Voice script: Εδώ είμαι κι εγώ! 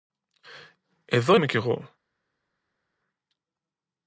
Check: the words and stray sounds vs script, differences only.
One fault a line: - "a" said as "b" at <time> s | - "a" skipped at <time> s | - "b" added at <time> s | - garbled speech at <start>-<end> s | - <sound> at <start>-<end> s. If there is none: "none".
none